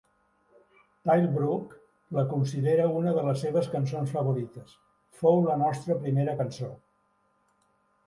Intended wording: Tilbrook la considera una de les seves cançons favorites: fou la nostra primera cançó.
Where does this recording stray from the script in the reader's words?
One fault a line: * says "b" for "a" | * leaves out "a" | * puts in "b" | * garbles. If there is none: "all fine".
all fine